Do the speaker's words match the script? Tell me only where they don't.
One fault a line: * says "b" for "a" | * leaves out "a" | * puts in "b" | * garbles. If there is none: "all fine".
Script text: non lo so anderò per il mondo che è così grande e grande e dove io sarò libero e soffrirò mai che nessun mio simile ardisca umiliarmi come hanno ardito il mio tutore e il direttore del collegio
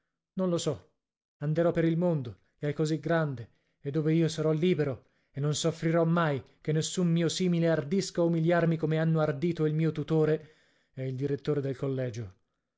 * leaves out "grande e"
* puts in "non"